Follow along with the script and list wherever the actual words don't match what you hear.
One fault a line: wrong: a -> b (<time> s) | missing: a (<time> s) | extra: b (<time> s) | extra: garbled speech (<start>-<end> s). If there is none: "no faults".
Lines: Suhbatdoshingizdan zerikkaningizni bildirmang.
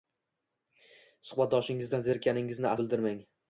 no faults